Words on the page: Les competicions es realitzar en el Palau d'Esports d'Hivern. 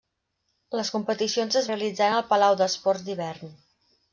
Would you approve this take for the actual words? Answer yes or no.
yes